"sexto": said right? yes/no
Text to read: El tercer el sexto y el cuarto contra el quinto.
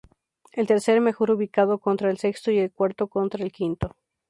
yes